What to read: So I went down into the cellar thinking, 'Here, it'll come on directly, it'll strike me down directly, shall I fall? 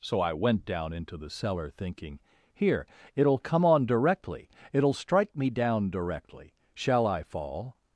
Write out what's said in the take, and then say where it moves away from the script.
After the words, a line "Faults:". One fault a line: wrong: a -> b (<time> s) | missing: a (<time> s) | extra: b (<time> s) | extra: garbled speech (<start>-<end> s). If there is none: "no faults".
So I went down into the cellar thinking, 'Here, it'll come on directly, it'll strike me down directly, shall I fall?
Faults:
no faults